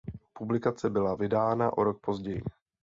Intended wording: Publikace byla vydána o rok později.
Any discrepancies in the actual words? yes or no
no